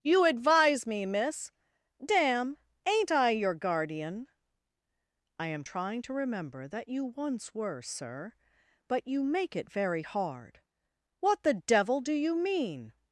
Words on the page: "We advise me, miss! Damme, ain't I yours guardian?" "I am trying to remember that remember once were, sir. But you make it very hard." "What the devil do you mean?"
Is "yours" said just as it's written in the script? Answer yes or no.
no